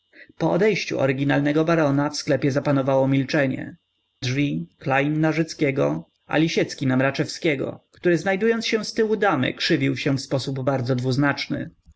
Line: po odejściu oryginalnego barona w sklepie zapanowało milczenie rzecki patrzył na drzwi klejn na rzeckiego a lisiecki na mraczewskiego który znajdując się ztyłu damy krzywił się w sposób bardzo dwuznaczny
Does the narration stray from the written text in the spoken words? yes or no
yes